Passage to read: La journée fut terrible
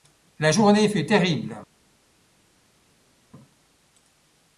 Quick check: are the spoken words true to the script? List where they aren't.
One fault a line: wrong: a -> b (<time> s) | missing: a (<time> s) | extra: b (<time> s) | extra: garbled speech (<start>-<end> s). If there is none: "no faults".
no faults